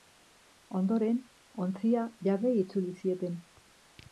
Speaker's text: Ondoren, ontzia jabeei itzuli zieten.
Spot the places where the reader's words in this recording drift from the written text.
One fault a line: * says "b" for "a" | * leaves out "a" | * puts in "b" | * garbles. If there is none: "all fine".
all fine